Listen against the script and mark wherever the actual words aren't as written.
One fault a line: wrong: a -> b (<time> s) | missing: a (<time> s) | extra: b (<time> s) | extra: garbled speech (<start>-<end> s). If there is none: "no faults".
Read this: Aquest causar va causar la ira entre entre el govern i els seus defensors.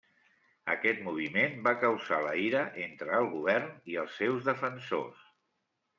wrong: causar -> moviment (1.1 s)
missing: entre (3.1 s)